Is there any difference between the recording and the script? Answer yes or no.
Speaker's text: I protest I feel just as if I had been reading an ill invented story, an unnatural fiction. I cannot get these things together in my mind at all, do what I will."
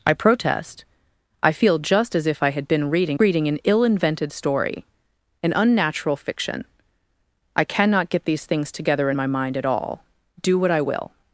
yes